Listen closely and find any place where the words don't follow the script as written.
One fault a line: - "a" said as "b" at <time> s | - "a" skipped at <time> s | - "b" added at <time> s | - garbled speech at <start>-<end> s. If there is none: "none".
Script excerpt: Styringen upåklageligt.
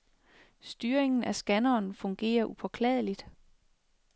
- "af scanneren fungerer" added at 1.2 s